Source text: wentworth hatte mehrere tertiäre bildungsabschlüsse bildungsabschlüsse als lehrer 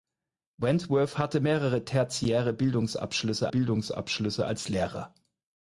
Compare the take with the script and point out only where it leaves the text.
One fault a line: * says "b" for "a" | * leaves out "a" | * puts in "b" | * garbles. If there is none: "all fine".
all fine